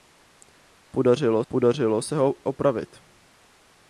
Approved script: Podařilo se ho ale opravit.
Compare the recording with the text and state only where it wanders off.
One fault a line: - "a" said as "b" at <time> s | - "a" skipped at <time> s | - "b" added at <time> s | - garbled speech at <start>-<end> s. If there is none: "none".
- "podařilo" added at 1.5 s
- "ale" skipped at 2.3 s